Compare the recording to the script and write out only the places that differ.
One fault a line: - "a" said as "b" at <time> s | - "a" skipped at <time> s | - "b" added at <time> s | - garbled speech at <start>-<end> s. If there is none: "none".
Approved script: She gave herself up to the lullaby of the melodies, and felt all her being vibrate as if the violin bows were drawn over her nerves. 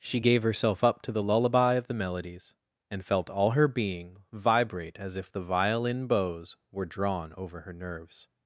none